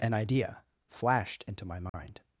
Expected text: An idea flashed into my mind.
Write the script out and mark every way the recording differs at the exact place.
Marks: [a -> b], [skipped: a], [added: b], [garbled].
An idea flashed into my mind.